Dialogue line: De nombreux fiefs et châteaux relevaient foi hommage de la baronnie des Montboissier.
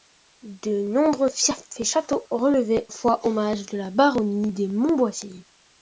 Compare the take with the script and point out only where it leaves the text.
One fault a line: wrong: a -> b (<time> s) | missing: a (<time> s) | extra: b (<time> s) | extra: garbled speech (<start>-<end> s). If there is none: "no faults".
no faults